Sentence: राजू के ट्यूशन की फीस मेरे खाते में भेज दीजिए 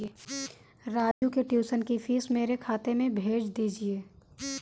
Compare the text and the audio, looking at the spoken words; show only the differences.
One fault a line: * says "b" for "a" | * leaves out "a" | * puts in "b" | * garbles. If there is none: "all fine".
all fine